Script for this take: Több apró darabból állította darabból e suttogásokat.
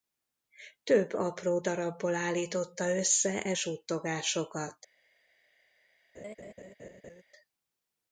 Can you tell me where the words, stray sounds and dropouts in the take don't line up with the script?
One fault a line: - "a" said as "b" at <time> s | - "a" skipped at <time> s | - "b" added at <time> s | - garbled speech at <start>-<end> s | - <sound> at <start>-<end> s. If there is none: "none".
- "darabból" said as "össze" at 3.0 s
- laugh at 6.1-7.2 s